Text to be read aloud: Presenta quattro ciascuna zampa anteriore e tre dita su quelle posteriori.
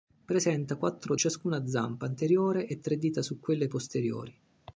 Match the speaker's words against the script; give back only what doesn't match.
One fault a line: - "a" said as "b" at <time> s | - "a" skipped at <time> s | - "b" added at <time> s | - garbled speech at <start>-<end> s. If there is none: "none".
none